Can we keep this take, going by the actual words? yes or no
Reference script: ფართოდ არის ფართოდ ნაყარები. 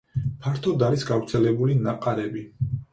no